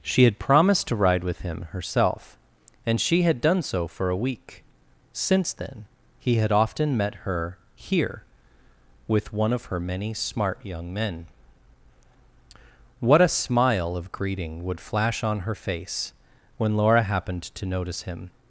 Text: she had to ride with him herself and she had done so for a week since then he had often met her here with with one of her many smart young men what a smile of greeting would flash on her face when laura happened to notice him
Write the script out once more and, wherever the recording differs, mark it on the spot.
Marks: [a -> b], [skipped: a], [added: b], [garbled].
she had [added: promised] to ride with him herself and she had done so for a week since then he had often met her here with [skipped: with] one of her many smart young men what a smile of greeting would flash on her face when laura happened to notice him